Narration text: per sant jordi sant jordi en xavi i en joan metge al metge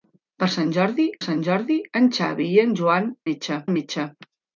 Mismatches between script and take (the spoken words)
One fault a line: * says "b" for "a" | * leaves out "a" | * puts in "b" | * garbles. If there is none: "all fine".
all fine